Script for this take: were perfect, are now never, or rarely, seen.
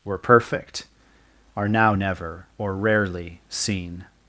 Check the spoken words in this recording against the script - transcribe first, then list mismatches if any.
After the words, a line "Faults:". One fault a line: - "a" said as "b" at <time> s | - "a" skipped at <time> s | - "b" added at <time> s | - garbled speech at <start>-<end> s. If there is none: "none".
were perfect, are now never, or rarely, seen.
Faults:
none